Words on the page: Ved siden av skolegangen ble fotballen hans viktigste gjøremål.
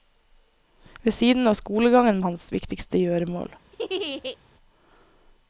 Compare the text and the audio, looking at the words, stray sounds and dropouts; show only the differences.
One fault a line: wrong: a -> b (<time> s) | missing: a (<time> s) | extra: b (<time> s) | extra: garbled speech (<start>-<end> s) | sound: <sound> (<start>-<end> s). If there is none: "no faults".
missing: ble fotballen (2.2 s)
sound: laugh (3.7-4.4 s)